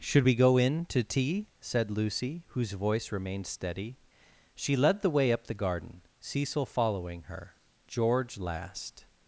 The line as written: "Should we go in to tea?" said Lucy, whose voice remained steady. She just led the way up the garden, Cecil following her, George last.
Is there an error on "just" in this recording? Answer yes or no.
yes